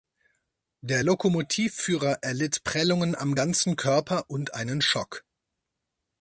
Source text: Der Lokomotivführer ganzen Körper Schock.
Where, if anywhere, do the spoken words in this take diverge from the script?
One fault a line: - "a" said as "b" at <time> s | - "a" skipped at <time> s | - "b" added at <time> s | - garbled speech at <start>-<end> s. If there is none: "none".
- "erlitt Prellungen am" added at 2.2 s
- "und einen" added at 4.3 s